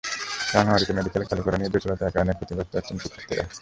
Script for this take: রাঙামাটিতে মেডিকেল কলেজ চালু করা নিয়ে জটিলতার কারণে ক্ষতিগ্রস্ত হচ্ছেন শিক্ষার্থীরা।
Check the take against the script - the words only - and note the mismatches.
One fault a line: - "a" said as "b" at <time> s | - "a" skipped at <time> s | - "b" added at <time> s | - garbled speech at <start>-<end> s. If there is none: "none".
- "কলেজ" skipped at 1.2 s